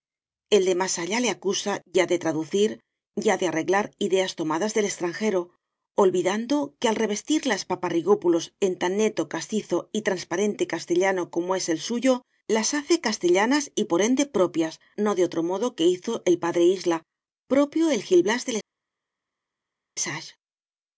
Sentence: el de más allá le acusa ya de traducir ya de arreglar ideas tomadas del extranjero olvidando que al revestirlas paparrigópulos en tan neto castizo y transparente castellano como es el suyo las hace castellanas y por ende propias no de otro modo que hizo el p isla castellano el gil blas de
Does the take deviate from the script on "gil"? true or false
false